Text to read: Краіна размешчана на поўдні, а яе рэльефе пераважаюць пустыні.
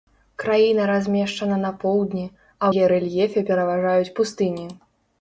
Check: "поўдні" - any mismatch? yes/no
no